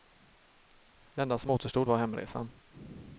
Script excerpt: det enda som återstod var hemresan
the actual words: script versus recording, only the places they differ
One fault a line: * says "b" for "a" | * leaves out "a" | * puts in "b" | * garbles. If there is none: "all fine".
all fine